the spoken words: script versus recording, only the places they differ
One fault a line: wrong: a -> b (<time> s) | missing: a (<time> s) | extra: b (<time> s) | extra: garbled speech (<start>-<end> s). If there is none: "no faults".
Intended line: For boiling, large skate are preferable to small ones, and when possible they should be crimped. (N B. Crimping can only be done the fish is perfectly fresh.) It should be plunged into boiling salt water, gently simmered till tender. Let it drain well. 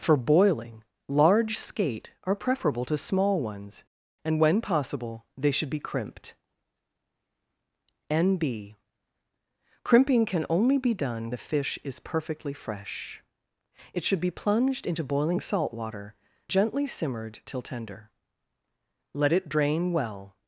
no faults